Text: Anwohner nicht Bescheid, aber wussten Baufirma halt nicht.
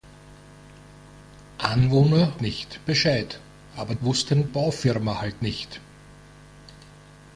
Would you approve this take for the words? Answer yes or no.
yes